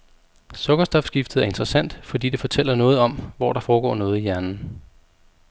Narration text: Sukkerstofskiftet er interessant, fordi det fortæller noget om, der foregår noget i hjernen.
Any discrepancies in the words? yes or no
yes